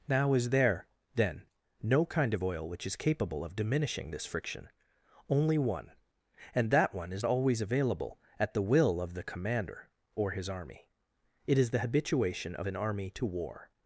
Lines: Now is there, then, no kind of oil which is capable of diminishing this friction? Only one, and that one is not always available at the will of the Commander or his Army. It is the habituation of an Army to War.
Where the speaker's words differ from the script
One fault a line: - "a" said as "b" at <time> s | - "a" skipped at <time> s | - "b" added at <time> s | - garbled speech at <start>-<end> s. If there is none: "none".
- "not" skipped at 7.2 s